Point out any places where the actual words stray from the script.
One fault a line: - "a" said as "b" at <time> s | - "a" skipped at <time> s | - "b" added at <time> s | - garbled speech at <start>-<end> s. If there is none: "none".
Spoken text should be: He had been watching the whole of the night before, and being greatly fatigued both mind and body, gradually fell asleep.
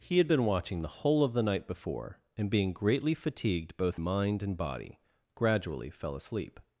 none